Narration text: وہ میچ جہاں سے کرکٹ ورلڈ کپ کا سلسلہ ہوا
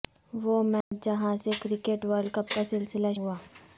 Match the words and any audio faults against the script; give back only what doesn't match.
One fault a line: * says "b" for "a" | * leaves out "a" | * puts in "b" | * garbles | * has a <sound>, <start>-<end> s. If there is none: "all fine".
* has a dropout, 0.8-0.9 s